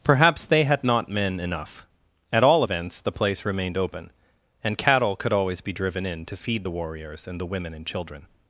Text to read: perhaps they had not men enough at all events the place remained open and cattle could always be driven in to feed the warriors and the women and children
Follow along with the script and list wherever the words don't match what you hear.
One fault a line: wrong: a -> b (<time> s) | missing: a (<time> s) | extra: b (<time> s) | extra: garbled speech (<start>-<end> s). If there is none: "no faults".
no faults